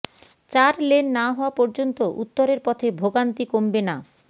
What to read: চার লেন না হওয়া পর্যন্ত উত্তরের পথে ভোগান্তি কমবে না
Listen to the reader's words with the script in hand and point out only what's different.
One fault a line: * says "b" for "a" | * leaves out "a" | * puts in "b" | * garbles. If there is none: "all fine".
all fine